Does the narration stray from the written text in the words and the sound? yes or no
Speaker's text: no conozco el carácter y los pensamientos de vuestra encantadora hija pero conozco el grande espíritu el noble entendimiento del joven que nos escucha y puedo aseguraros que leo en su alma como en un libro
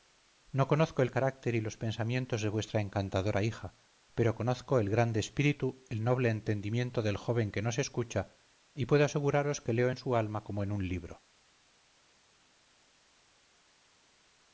no